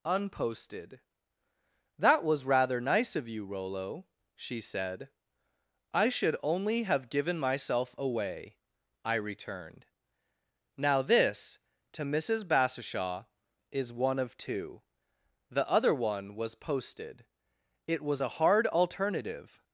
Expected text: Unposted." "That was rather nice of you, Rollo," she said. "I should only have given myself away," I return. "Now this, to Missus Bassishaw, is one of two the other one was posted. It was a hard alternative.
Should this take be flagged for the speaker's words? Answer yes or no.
yes